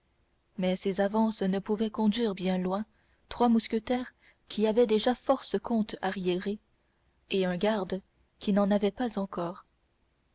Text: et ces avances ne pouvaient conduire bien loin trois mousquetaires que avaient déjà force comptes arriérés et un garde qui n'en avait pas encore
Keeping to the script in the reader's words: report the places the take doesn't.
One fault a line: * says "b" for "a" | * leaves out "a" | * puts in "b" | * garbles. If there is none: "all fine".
* says "mais" for "et"
* says "qui" for "que"